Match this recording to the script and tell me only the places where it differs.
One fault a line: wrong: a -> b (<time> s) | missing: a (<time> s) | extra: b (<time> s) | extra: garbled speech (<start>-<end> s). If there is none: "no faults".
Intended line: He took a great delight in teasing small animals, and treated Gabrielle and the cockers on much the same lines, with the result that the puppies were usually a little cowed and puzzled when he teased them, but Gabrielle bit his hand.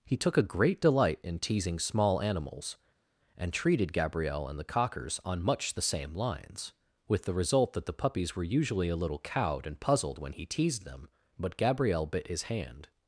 no faults